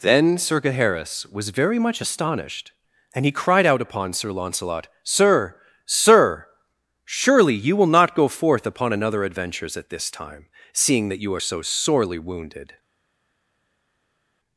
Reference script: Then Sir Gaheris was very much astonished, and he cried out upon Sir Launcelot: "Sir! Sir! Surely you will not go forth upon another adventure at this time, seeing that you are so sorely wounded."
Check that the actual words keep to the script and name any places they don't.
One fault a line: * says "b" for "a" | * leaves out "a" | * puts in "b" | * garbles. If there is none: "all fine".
* says "adventures" for "adventure"